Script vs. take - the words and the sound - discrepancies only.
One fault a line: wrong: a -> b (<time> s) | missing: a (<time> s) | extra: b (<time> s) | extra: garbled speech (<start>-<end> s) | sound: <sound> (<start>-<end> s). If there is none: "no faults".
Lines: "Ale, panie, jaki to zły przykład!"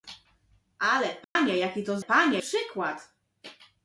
sound: dropout (1.2-1.4 s)
wrong: zły -> panie (2.0 s)